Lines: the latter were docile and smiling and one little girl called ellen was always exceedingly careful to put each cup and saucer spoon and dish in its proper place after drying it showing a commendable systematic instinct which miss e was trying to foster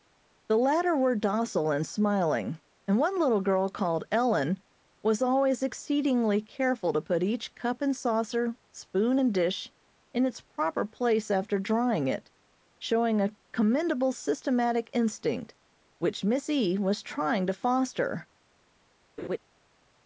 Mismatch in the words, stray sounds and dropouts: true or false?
true